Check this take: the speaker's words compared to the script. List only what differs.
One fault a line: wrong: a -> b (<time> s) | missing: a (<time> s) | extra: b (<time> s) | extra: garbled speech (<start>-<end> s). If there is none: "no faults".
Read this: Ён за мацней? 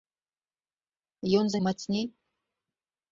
no faults